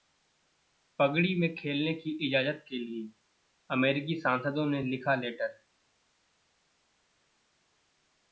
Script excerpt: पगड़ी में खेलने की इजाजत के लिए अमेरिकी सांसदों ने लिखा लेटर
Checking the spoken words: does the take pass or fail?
pass